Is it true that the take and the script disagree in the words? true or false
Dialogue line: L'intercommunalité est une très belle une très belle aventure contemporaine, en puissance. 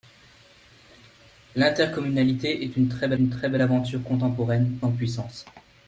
false